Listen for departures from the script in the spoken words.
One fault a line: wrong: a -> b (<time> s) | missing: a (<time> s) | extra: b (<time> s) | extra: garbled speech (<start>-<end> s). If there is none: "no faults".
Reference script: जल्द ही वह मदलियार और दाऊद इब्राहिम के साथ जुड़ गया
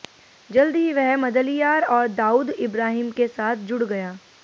no faults